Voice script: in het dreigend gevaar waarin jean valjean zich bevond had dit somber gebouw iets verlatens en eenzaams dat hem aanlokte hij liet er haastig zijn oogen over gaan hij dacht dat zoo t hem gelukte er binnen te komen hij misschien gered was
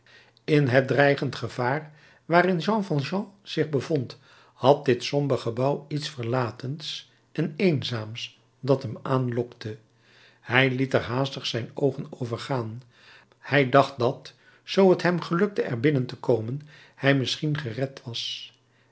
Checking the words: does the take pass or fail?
pass